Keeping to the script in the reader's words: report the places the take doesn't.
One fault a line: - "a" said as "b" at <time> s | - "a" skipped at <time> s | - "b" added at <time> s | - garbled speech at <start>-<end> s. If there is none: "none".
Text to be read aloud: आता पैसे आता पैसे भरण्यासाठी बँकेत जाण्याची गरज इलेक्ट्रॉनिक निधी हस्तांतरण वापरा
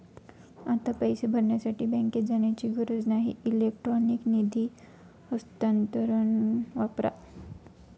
- "आता पैसे" skipped at 1.3 s
- "नाही" added at 3.1 s